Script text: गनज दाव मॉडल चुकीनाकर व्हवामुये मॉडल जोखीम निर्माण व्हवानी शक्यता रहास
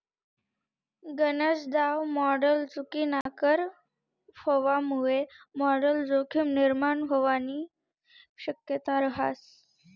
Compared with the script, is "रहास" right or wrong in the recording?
right